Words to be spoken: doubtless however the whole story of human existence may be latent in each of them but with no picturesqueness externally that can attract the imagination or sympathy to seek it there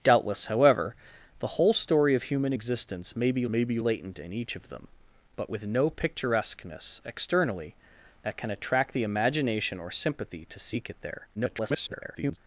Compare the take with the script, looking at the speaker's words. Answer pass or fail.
fail